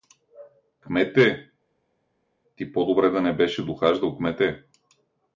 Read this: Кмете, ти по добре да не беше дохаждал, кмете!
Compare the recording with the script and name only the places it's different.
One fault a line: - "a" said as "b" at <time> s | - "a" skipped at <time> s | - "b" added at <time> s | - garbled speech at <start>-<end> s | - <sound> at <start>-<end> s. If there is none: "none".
none